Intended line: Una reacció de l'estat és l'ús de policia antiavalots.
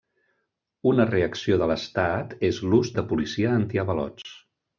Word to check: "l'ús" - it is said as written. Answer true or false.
true